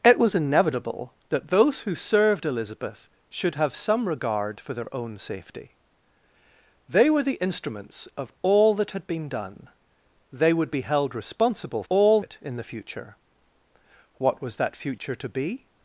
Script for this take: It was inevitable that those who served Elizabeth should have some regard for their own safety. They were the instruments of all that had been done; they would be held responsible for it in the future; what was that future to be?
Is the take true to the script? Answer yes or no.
no